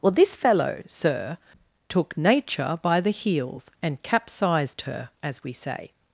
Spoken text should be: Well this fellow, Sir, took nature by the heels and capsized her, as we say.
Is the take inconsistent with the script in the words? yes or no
no